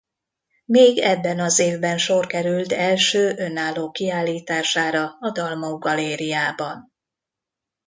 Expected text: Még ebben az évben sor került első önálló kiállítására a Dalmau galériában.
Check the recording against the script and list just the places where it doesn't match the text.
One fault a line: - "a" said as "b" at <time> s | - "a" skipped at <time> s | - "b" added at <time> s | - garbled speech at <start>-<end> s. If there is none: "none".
none